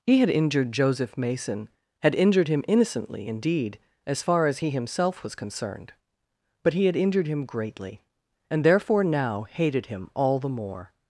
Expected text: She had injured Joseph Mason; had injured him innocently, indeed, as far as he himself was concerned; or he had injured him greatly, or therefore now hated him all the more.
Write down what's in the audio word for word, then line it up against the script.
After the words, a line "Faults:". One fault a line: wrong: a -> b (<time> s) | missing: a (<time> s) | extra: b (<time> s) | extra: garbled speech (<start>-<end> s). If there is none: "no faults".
He had injured Joseph Mason; had injured him innocently, indeed, as far as he himself was concerned; but he had injured him greatly, and therefore now hated him all the more.
Faults:
wrong: She -> He (0.1 s)
wrong: or -> but (6.6 s)
wrong: or -> and (8.5 s)